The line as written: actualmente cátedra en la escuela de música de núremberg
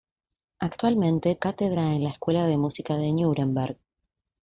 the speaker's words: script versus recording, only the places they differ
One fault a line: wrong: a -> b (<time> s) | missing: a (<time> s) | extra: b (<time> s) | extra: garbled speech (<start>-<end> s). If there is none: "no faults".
no faults